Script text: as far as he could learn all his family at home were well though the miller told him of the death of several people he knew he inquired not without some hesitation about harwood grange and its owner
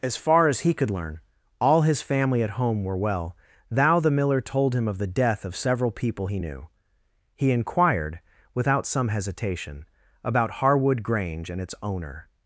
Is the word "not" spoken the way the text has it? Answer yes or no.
no